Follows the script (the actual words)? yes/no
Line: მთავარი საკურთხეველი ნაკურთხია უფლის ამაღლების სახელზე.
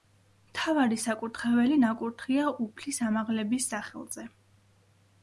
yes